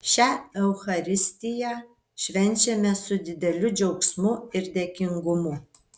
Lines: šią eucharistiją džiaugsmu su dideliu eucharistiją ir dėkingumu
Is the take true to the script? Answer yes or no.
no